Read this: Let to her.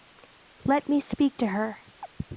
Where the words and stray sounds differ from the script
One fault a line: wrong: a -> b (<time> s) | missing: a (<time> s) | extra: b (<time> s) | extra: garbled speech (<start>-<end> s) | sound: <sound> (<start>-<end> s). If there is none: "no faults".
extra: me speak (0.9 s)
sound: chirp (2.0-2.1 s)